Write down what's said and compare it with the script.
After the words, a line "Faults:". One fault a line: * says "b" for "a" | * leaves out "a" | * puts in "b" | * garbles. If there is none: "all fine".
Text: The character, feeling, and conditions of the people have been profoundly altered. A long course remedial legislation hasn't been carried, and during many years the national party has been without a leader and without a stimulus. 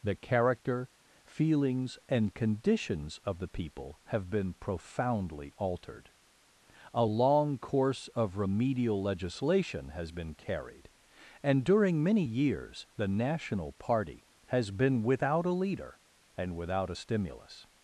The character, feelings, and conditions of the people have been profoundly altered. A long course of remedial legislation has been carried, and during many years the national party has been without a leader and without a stimulus.
Faults:
* says "feelings" for "feeling"
* puts in "of"
* says "has" for "hasn't"